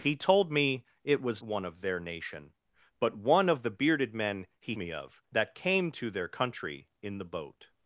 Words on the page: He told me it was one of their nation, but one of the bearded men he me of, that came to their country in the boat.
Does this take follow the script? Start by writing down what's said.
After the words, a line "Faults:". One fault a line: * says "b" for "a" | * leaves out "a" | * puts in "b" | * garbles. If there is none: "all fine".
He told me it was one of their nation, but one of the bearded men he me of, that came to their country in the boat.
Faults:
all fine